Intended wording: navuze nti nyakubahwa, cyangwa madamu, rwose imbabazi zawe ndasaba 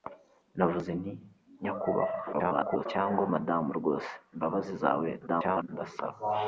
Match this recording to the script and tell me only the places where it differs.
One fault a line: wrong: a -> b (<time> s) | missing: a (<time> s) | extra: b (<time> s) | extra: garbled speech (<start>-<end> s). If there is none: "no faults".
extra: garbled speech (2.3-2.9 s)
extra: garbled speech (5.3-5.7 s)